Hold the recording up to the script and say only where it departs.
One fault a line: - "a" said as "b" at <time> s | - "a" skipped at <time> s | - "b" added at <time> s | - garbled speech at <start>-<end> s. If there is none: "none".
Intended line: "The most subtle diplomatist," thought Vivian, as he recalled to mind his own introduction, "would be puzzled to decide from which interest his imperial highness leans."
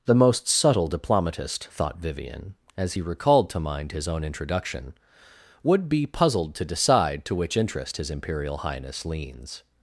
- "from" said as "to" at 7.2 s